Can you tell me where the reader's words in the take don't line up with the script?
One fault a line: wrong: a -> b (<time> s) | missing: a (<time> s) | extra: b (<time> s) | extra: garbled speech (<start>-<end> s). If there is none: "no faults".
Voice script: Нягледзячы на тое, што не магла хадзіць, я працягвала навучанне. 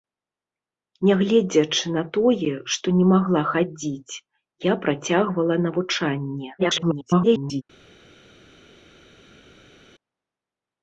extra: garbled speech (6.6-7.6 s)